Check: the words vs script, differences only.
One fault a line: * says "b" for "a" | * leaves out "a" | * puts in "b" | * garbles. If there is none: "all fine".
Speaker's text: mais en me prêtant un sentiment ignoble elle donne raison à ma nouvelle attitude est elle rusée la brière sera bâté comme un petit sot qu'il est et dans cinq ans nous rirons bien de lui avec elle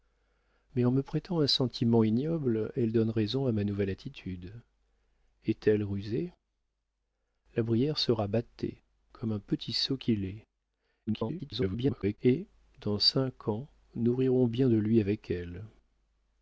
* garbles